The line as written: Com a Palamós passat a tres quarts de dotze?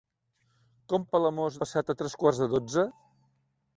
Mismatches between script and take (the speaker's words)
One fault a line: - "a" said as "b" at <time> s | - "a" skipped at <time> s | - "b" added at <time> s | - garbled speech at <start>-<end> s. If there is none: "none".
none